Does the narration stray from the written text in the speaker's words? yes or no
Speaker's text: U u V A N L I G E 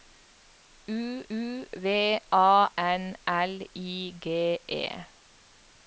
no